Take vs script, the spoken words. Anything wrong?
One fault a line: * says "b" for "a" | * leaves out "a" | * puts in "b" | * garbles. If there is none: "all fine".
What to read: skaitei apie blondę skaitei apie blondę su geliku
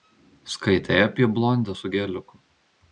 * leaves out "skaitei apie blondę"